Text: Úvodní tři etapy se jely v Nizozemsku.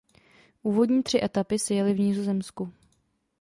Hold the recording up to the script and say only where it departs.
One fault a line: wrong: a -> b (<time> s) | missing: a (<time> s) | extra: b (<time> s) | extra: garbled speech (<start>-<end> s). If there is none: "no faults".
no faults